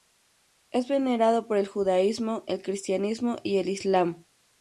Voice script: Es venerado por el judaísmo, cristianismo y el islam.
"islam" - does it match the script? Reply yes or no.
yes